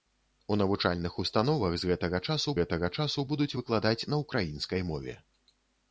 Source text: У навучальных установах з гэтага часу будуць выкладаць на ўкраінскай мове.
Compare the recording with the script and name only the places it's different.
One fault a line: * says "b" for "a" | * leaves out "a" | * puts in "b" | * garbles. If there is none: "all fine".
* puts in "гэтага часу"